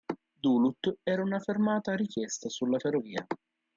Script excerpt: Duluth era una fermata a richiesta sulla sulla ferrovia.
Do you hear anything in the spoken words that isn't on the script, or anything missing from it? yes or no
yes